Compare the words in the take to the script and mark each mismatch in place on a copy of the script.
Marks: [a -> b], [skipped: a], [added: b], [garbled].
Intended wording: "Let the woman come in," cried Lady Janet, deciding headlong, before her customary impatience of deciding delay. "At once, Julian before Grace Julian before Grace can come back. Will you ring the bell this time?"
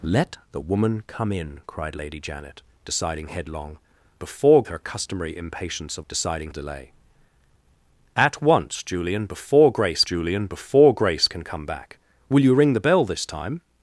"Let the woman come in," cried Lady Janet, deciding headlong, before her customary impatience of deciding delay. "At once, Julian before Grace Julian before Grace can come back. Will you ring the bell this time?"